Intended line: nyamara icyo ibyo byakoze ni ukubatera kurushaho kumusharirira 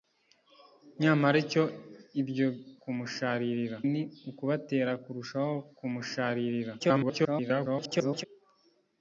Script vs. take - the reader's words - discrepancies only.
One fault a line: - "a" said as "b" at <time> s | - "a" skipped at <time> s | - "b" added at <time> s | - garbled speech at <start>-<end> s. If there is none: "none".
- "byakoze" said as "kumusharirira" at 2.8 s
- garbled speech at 6.8-8.2 s